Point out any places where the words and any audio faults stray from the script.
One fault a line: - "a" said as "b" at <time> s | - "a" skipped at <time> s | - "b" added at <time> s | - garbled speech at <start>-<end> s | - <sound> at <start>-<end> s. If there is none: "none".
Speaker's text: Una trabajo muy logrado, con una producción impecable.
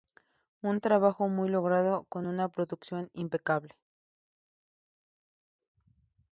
- "Una" said as "Un" at 0.6 s